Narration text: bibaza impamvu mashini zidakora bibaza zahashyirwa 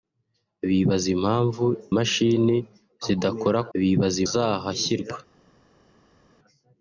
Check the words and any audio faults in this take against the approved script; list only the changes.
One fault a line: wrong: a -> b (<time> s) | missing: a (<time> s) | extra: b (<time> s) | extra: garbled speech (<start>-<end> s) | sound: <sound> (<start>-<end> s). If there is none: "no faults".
no faults